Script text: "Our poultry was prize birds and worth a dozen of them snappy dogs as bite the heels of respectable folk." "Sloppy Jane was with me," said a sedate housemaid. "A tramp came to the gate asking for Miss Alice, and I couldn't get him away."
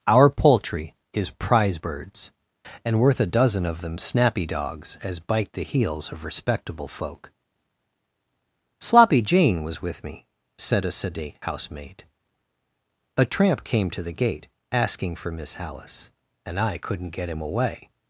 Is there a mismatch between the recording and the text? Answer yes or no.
yes